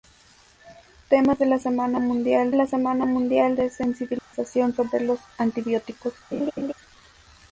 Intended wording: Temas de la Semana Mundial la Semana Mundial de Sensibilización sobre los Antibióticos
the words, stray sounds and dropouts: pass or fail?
fail